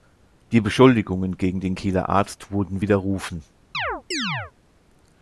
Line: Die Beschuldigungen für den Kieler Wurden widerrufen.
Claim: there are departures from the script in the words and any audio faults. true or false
true